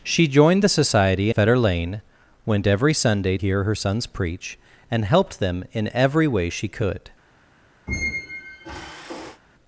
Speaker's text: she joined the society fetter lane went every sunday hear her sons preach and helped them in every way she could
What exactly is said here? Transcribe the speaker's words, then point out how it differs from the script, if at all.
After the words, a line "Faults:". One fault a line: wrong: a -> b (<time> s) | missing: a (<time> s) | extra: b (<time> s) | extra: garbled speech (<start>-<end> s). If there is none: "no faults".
she joined the society fetter lane went every sunday hear her sons preach and helped them in every way she could
Faults:
no faults